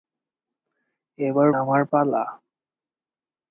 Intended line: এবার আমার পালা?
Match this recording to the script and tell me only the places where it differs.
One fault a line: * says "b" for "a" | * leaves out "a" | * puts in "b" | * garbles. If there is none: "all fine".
all fine